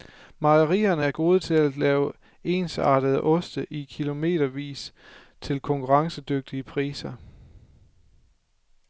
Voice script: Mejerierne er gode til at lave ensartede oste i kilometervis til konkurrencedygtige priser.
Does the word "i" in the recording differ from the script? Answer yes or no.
no